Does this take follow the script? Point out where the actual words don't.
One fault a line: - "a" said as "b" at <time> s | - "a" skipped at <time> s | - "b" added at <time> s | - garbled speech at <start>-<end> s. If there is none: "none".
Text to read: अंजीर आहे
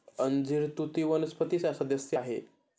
- "तुती वनस्पतीचा सदस्य" added at 0.8 s